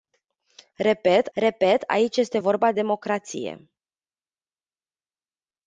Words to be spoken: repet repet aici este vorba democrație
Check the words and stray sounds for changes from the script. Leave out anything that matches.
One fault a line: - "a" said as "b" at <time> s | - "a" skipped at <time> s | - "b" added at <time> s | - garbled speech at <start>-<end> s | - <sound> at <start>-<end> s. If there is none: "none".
none